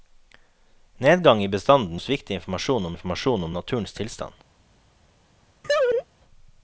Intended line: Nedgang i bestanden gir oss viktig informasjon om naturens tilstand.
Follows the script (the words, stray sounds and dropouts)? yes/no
no